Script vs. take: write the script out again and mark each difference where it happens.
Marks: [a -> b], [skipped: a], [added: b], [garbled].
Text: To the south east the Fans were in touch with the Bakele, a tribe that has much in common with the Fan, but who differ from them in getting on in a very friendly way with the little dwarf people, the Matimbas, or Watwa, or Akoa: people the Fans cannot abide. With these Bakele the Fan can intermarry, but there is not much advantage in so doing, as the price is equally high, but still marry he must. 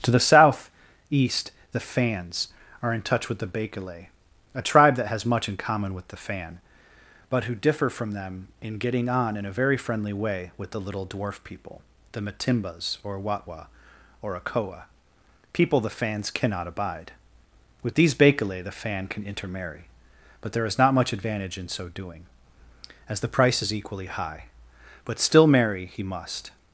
To the south east the Fans [were -> are] in touch with the Bakele, a tribe that has much in common with the Fan, but who differ from them in getting on in a very friendly way with the little dwarf people, the Matimbas, or Watwa, or Akoa: people the Fans cannot abide. With these Bakele the Fan can intermarry, but there is not much advantage in so doing, as the price is equally high, but still marry he must.